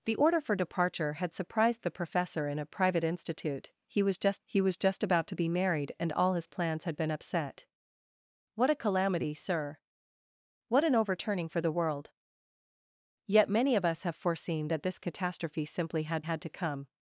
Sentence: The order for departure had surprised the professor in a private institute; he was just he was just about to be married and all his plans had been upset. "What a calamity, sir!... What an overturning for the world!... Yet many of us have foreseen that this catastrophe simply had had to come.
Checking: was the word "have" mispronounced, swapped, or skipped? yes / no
no